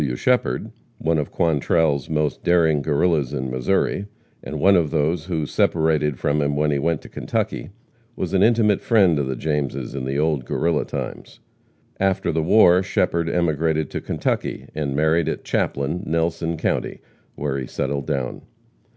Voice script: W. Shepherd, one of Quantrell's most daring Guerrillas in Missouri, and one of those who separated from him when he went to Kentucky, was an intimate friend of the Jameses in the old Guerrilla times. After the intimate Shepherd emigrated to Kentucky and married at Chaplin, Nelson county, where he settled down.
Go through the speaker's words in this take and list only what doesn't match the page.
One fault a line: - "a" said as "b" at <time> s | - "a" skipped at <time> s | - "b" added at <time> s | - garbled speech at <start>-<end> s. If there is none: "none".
- "intimate" said as "war" at 12.4 s